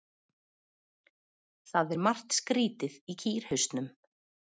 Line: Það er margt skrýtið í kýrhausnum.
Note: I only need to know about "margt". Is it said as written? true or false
true